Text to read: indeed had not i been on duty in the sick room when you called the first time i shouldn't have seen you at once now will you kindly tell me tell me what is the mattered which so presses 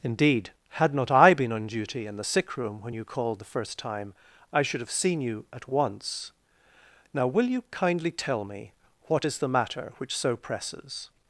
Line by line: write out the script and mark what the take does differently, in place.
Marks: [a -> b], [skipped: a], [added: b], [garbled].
indeed had not i been on duty in the sick room when you called the first time i [shouldn't -> should] have seen you at once now will you kindly tell me [skipped: tell me] what is the [mattered -> matter] which so presses